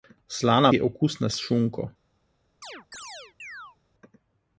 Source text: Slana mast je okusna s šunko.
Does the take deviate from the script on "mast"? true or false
true